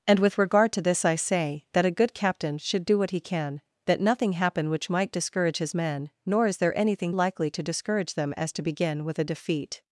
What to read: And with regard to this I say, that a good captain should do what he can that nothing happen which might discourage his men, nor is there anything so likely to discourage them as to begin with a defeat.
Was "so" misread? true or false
true